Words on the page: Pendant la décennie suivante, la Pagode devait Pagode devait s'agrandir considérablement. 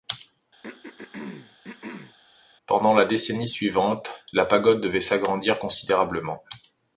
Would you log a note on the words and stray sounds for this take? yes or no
yes